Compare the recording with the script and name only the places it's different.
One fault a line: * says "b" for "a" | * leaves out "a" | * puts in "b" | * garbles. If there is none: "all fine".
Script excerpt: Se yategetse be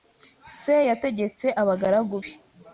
* puts in "abagaragu"